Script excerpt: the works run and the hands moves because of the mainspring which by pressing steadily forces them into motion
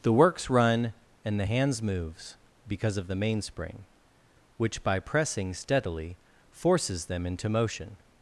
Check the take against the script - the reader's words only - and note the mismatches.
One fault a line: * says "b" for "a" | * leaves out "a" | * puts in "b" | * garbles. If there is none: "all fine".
all fine